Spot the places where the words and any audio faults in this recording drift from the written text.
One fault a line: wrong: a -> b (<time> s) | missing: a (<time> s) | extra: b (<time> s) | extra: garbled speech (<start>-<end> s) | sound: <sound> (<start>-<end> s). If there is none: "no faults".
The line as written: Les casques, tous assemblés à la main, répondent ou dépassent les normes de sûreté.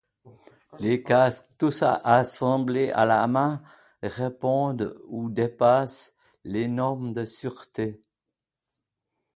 no faults